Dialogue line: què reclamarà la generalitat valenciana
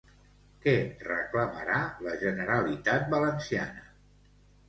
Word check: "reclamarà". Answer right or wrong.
right